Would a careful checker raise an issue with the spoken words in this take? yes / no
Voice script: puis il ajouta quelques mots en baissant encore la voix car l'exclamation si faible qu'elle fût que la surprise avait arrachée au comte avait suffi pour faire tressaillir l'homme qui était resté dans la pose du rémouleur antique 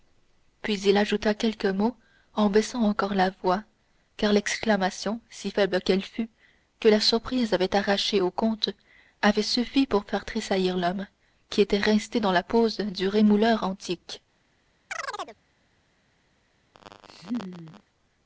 no